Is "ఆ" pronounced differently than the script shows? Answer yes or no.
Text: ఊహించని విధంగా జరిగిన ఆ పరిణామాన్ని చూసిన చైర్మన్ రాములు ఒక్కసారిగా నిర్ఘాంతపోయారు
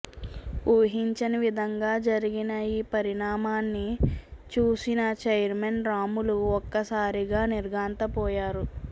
yes